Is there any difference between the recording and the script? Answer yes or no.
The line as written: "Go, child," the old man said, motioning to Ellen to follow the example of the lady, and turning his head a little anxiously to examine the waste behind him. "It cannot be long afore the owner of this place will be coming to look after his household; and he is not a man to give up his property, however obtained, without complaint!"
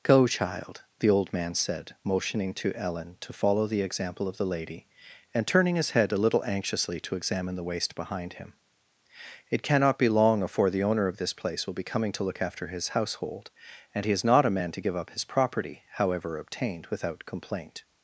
no